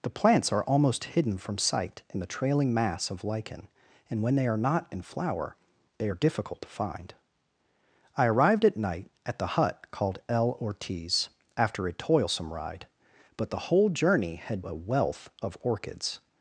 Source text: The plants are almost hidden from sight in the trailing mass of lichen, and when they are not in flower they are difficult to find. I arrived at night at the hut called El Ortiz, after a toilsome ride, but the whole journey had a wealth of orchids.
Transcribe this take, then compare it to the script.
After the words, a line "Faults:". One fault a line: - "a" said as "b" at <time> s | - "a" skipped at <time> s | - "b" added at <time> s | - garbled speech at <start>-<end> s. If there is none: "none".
The plants are almost hidden from sight in the trailing mass of lichen, and when they are not in flower they are difficult to find. I arrived at night at the hut called El Ortiz, after a toilsome ride, but the whole journey had a wealth of orchids.
Faults:
none